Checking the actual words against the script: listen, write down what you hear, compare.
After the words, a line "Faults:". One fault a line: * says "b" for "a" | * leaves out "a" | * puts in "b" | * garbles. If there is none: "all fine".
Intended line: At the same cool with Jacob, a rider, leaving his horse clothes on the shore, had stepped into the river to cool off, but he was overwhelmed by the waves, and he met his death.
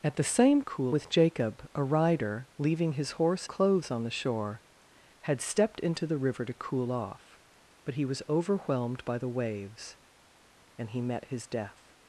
At the same cool with Jacob, a rider, leaving his horse clothes on the shore, had stepped into the river to cool off, but he was overwhelmed by the waves, and he met his death.
Faults:
all fine